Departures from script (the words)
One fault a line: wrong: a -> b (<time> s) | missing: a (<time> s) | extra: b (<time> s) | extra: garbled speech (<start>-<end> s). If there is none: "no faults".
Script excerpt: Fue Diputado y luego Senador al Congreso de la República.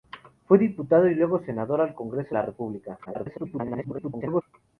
missing: de (2.4 s)
extra: garbled speech (3.0-4.4 s)